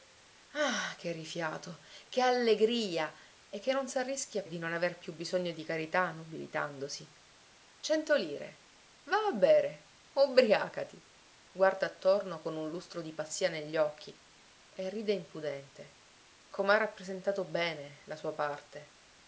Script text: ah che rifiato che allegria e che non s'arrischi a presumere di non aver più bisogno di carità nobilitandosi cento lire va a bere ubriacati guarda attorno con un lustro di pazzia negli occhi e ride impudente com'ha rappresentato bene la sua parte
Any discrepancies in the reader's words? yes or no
yes